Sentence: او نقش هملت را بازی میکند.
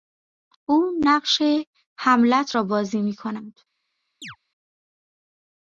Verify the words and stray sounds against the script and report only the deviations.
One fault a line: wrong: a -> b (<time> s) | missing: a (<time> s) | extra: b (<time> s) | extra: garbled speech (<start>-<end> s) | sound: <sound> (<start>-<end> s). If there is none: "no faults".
sound: chirp (4.2-4.4 s)